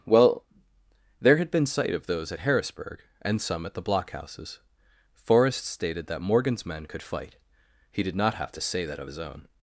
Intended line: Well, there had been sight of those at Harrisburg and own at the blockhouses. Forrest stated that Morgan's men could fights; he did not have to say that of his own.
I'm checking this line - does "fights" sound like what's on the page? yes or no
no